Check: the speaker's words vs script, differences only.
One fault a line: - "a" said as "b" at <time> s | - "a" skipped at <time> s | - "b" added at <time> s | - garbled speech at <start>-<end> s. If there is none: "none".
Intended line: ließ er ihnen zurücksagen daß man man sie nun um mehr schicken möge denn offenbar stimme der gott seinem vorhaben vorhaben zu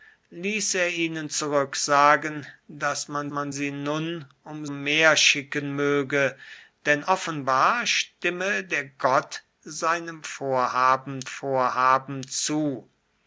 none